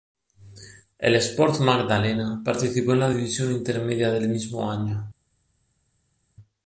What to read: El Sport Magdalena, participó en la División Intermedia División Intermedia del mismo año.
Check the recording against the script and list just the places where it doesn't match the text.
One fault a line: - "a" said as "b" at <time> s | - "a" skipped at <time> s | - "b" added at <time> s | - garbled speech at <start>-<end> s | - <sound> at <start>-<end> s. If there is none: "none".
- "División Intermedia" skipped at 4.1 s